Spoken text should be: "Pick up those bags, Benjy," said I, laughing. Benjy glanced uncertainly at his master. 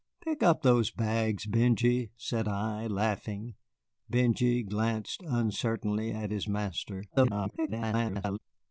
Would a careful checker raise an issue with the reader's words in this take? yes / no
yes